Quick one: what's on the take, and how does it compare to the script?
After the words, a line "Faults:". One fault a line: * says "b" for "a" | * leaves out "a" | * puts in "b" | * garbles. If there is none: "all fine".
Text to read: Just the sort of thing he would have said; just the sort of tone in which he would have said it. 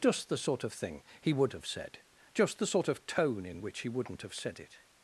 Just the sort of thing he would have said; just the sort of tone in which he wouldn't have said it.
Faults:
* says "wouldn't" for "would"